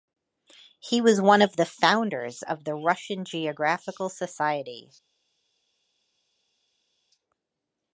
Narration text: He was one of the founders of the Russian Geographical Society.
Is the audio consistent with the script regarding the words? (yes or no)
yes